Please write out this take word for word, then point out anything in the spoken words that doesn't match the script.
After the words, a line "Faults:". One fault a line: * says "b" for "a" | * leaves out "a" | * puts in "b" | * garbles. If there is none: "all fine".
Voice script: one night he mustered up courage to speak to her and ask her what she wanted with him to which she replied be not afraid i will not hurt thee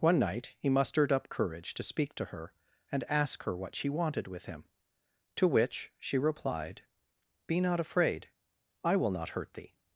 one night he mustered up courage to speak to her and ask her what she wanted with him to which she replied be not afraid i will not hurt thee
Faults:
all fine